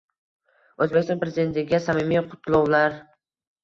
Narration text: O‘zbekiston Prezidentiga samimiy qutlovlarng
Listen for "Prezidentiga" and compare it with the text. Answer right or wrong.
right